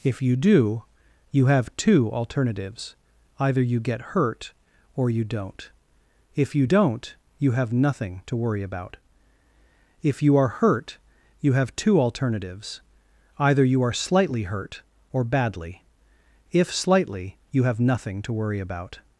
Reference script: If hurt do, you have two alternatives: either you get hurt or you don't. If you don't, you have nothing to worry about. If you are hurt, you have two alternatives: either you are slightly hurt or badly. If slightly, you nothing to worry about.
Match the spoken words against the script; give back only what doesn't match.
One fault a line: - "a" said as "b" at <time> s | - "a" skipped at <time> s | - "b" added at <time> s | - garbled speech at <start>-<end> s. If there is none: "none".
- "hurt" said as "you" at 0.2 s
- "have" added at 17.6 s